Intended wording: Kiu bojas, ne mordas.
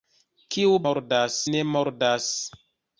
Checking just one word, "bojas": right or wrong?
wrong